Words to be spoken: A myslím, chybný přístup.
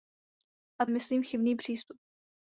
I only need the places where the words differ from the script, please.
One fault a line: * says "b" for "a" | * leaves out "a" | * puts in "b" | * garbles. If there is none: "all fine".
all fine